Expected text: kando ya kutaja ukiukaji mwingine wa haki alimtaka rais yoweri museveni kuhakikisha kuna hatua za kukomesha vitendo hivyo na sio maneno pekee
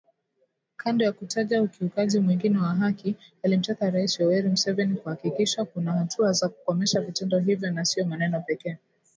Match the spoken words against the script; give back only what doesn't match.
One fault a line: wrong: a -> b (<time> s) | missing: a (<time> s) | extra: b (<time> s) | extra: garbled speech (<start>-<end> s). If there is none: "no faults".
no faults